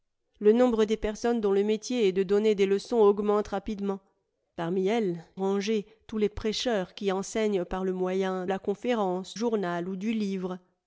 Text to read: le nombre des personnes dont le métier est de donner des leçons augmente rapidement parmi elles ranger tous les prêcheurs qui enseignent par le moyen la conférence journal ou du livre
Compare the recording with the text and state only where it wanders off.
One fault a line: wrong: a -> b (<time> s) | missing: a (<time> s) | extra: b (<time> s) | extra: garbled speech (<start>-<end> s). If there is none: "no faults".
no faults